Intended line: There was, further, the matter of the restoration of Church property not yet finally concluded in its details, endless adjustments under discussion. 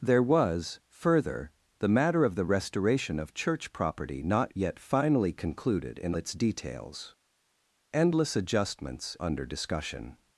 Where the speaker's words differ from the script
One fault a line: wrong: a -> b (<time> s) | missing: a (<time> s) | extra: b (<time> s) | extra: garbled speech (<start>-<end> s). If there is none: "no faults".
no faults